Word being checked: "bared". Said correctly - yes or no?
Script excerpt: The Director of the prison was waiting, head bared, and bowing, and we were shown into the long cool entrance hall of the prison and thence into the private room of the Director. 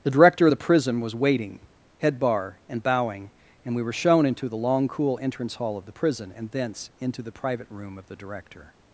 no